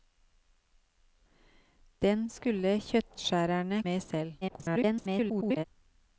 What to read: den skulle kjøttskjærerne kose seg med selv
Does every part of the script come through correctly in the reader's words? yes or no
no